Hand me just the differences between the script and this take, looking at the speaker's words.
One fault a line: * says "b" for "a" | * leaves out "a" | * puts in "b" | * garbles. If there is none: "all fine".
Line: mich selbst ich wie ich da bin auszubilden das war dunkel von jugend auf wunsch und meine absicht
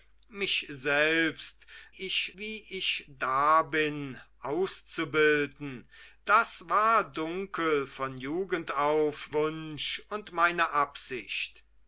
all fine